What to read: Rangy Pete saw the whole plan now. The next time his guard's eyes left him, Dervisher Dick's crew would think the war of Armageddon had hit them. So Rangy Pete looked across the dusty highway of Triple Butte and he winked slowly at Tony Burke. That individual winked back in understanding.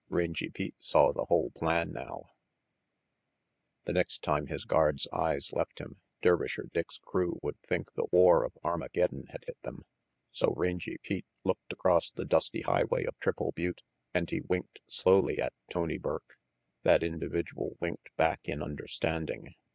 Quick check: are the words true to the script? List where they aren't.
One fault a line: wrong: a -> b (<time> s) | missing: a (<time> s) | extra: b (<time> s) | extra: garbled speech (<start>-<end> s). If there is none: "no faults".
no faults